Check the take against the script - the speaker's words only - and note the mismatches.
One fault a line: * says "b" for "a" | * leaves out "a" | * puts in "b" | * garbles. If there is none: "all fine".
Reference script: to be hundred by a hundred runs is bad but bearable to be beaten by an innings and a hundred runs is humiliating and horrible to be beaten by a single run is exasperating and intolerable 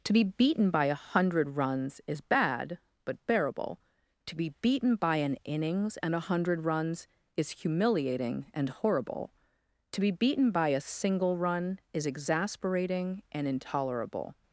* says "beaten" for "hundred"